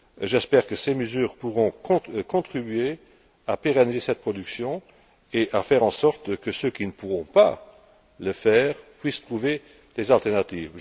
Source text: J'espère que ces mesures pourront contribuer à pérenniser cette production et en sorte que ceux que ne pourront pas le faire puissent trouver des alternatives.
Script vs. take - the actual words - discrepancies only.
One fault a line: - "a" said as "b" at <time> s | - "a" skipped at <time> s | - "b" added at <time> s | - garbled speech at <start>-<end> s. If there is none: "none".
- "à faire" added at 5.5 s
- "que" said as "qui" at 6.7 s